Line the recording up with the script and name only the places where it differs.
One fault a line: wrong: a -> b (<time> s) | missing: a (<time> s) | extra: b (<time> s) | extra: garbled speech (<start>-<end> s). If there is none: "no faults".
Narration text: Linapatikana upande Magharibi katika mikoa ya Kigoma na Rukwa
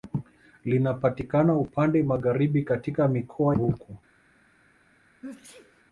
missing: ya Kigoma na (3.6 s)